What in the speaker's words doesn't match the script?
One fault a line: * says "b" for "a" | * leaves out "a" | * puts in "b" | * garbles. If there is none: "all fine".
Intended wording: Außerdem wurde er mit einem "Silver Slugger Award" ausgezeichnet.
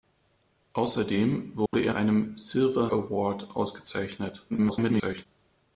* leaves out "mit"
* leaves out "Slugger"
* garbles